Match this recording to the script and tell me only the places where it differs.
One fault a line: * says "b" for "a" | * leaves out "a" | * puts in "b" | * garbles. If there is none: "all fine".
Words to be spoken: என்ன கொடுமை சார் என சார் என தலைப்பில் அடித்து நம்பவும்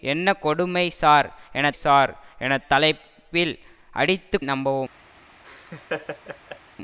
all fine